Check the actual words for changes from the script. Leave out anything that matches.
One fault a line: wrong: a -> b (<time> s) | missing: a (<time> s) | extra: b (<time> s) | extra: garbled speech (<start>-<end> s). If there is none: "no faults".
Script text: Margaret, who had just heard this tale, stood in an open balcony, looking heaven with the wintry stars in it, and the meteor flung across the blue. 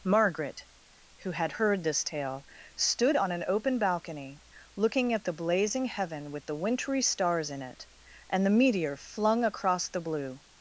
missing: just (1.5 s)
wrong: in -> on (3.1 s)
extra: at the blazing (5.1 s)